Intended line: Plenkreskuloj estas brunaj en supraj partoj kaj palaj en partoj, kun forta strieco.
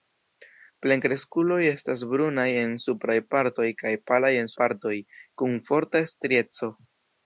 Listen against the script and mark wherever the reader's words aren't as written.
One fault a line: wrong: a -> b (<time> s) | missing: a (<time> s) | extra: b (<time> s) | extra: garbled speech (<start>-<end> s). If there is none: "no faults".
no faults